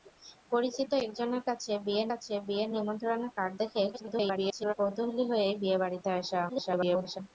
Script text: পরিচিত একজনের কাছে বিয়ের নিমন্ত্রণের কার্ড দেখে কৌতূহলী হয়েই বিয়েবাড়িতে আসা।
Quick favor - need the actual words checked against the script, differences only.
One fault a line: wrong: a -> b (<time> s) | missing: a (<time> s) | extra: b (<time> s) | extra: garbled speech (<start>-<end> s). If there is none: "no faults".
extra: কাছে বিয়ের (2.1 s)
extra: garbled speech (3.9-4.7 s)
extra: garbled speech (6.5-7.2 s)